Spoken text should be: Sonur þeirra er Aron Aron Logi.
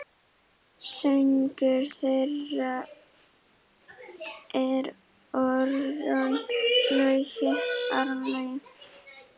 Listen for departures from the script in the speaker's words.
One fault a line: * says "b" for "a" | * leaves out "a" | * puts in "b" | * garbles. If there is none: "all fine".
* leaves out "Aron"